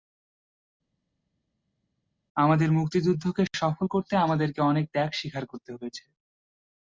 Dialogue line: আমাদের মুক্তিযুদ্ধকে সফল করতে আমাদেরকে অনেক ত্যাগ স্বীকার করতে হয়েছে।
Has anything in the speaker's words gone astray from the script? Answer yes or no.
no